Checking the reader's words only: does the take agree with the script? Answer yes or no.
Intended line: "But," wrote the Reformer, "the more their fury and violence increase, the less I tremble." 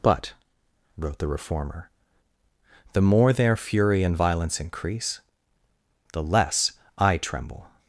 yes